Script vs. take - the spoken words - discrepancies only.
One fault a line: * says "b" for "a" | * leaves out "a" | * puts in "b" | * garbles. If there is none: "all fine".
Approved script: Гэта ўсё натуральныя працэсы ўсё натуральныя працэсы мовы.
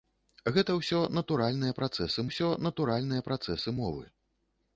all fine